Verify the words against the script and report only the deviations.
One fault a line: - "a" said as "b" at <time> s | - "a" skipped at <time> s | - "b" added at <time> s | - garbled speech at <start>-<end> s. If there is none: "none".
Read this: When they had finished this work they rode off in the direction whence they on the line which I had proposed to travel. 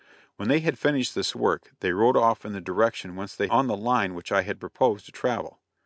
none